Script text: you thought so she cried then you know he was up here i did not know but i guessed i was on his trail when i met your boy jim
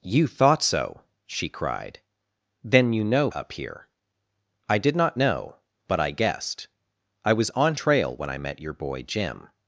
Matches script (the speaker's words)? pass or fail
fail